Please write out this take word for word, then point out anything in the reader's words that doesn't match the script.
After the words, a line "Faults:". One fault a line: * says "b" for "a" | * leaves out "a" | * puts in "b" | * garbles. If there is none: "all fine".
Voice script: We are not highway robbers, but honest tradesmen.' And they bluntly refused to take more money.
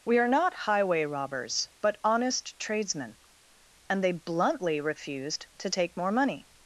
We are not highway robbers, but honest tradesmen.' And they bluntly refused to take more money.
Faults:
all fine